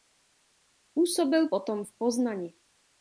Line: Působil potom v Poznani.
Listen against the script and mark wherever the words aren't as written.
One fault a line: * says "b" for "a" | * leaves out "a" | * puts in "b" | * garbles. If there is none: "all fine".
all fine